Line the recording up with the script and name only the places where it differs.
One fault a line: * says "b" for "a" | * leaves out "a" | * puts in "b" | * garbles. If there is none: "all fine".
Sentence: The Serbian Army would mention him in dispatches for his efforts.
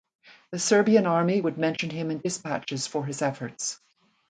all fine